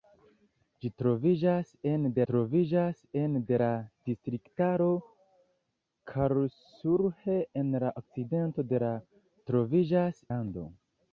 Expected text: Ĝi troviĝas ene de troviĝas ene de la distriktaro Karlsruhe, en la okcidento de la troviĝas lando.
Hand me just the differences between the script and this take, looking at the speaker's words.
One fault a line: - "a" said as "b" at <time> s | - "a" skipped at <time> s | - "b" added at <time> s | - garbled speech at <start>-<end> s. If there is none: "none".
none